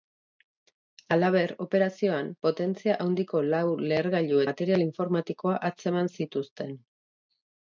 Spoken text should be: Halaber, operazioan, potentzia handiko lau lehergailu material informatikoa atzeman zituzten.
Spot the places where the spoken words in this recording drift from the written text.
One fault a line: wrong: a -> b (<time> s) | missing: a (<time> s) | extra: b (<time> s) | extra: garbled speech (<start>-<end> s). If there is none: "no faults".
no faults